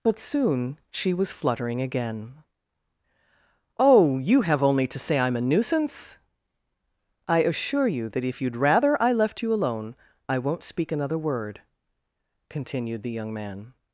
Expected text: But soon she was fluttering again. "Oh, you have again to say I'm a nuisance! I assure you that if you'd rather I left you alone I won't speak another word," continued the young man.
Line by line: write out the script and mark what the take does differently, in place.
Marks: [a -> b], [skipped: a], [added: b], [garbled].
But soon she was fluttering again. "Oh, you have [again -> only] to say I'm a nuisance! I assure you that if you'd rather I left you alone I won't speak another word," continued the young man.